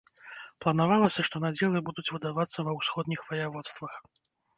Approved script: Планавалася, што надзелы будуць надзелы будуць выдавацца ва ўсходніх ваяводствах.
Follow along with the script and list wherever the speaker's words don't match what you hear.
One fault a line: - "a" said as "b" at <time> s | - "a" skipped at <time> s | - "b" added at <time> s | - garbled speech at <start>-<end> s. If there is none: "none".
- "надзелы будуць" skipped at 2.0 s